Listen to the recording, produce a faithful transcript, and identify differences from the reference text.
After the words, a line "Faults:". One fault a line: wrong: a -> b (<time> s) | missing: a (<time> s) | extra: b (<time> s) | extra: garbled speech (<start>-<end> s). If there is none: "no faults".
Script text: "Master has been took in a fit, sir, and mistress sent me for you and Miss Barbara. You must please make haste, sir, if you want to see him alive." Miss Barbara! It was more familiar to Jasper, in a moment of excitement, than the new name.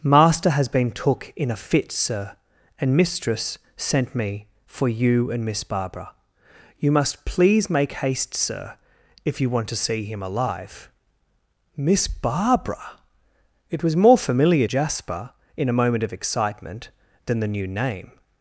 "Master has been took in a fit, sir, and mistress sent me for you and Miss Barbara. You must please make haste, sir, if you want to see him alive." Miss Barbara! It was more familiar Jasper, in a moment of excitement, than the new name.
Faults:
missing: to (14.7 s)